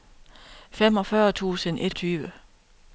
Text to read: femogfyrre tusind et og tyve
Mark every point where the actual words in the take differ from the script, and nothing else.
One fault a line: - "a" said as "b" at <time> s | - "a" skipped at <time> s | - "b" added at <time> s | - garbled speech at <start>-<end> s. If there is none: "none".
none